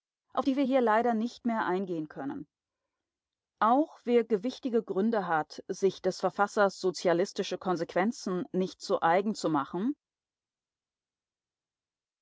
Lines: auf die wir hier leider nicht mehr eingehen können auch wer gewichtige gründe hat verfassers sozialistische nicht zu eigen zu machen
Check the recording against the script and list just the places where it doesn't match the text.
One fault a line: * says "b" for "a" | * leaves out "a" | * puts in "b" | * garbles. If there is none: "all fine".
* puts in "sich des"
* puts in "konsequenzen"